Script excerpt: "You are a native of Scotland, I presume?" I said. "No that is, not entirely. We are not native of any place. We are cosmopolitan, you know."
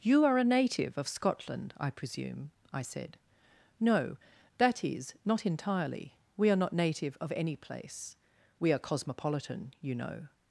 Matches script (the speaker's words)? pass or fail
pass